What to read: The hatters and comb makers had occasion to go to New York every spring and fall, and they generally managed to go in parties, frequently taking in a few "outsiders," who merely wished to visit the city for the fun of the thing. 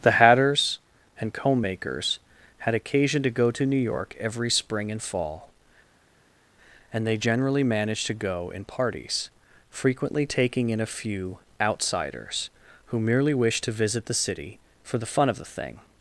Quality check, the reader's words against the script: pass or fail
pass